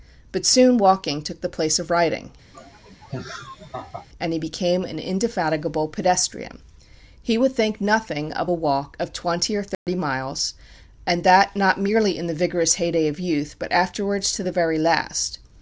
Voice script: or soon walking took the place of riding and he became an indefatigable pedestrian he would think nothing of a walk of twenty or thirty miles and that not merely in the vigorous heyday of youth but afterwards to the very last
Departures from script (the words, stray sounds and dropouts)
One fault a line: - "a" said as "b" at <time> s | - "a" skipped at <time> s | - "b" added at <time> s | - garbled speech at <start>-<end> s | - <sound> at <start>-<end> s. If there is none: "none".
- "or" said as "but" at 0.3 s
- laugh at 2.5-4.1 s
- dropout at 9.7-9.9 s